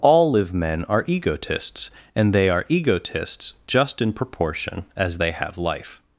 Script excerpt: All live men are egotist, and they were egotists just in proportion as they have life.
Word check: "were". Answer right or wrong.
wrong